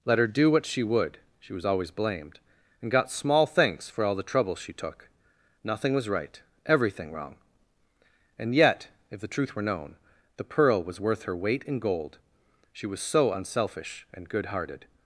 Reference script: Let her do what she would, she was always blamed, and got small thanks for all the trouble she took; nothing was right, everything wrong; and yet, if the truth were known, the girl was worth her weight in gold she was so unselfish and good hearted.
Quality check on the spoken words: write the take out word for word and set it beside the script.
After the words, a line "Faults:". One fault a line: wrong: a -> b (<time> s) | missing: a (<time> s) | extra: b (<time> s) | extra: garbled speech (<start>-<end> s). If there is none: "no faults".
Let her do what she would, she was always blamed, and got small thanks for all the trouble she took; nothing was right, everything wrong; and yet, if the truth were known, the pearl was worth her weight in gold she was so unselfish and good hearted.
Faults:
wrong: girl -> pearl (10.5 s)